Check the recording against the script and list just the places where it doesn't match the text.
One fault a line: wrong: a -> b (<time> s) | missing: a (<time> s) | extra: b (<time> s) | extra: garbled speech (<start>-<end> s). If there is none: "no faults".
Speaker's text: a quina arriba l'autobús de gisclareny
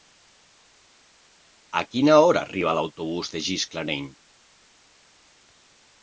extra: hora (2.3 s)